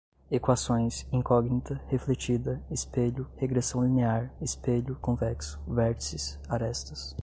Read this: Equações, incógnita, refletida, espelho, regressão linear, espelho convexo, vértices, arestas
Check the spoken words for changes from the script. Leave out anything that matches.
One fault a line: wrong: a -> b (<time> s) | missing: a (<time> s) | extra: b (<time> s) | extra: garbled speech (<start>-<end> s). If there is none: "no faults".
no faults